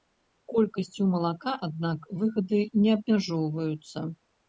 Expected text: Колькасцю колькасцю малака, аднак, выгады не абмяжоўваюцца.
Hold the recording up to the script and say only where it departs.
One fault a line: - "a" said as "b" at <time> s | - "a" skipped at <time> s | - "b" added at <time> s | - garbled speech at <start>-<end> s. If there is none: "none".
- "колькасцю" skipped at 1.0 s